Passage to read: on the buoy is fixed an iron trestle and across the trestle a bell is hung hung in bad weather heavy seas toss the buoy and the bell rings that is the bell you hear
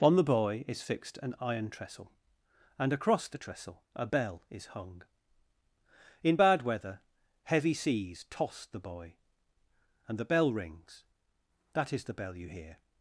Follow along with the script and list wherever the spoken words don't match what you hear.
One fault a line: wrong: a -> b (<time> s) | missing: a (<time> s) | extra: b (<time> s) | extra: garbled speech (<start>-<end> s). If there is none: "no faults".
missing: hung (5.0 s)